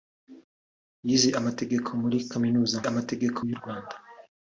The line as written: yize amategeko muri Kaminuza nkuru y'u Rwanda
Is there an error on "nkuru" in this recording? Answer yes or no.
yes